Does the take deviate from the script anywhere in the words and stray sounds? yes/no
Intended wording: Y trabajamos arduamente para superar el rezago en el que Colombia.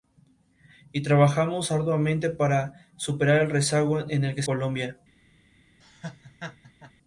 yes